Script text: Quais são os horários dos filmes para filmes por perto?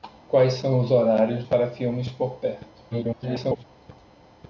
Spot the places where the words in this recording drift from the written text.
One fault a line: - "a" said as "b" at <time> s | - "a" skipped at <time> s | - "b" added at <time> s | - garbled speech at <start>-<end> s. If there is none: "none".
- "dos filmes" skipped at 1.4 s
- garbled speech at 2.9-3.6 s